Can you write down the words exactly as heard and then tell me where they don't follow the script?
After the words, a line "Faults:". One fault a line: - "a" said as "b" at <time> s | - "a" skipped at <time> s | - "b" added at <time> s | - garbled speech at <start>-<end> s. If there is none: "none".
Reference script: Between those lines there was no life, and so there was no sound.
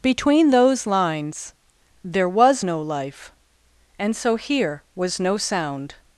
Between those lines there was no life, and so here was no sound.
Faults:
- "there" said as "here" at 4.4 s